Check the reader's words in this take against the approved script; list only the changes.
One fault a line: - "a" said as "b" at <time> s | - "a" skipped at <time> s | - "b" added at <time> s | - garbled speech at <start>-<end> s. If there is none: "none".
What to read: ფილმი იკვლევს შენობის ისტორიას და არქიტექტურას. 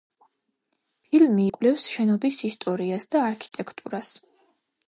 none